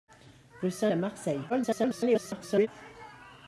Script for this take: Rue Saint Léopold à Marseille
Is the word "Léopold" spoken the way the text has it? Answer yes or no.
no